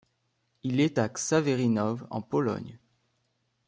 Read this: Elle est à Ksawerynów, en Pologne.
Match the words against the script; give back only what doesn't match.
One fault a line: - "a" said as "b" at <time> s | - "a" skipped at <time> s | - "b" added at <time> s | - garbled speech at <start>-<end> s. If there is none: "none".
- "Elle" said as "Il" at 0.6 s